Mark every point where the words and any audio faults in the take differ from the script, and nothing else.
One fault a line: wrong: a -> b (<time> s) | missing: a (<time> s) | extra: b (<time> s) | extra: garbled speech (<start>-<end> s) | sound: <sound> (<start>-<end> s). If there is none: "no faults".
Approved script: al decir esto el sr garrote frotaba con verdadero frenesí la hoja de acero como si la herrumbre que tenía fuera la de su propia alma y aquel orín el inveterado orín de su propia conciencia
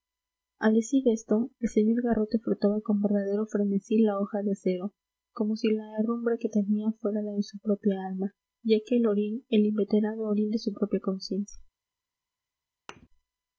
sound: thud (12.9-13.1 s)